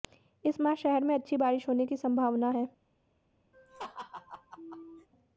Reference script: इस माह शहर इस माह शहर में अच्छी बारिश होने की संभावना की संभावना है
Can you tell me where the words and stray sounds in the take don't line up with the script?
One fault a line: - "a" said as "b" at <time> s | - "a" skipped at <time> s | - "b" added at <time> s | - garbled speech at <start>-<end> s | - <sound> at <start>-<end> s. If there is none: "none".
- "इस माह शहर" skipped at 1.0 s
- "की संभावना" skipped at 2.5 s
- laugh at 3.5-5.1 s